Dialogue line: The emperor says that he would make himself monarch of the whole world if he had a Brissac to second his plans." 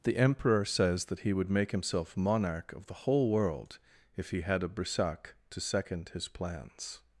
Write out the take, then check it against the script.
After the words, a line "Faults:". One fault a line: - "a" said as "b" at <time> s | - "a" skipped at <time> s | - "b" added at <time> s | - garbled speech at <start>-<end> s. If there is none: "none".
The emperor says that he would make himself monarch of the whole world if he had a Brissac to second his plans."
Faults:
none